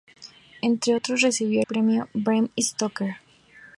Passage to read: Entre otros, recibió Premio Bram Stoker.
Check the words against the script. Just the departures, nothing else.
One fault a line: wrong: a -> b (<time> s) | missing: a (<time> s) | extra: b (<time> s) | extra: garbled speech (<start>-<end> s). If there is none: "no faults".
no faults